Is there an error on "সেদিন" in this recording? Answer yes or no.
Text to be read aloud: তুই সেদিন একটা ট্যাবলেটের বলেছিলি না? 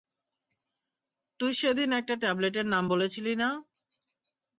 no